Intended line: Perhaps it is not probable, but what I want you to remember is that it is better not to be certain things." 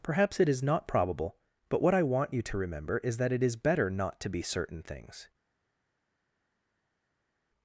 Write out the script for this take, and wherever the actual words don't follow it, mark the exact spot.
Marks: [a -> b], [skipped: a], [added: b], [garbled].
Perhaps it is not probable, but what I want you to remember is that it is better not to be certain things."